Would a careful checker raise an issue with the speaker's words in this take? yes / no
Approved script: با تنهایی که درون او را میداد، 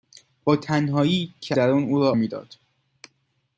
no